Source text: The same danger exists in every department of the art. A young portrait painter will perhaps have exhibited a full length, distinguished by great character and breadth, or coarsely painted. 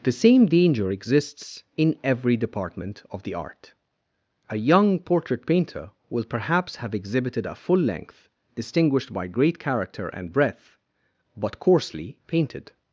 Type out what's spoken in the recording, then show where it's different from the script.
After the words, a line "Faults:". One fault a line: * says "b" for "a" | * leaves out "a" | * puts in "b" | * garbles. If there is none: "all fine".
The same danger exists in every department of the art. A young portrait painter will perhaps have exhibited a full length, distinguished by great character and breadth, but coarsely painted.
Faults:
* says "but" for "or"